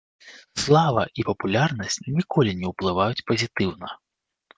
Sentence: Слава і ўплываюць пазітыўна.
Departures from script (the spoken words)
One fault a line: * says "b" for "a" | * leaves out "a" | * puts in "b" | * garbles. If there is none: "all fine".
* puts in "папулярнасць ніколі не"